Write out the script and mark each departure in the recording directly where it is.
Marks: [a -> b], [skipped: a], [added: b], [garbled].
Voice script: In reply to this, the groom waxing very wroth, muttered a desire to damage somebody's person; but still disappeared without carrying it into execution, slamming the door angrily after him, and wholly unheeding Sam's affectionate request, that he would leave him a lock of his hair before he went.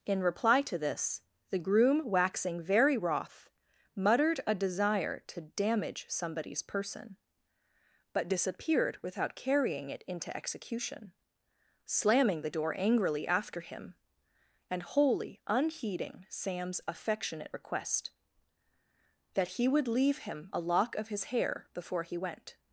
In reply to this, the groom waxing very wroth, muttered a desire to damage somebody's person; but [skipped: still] disappeared without carrying it into execution, slamming the door angrily after him, and wholly unheeding Sam's affectionate request, that he would leave him a lock of his hair before he went.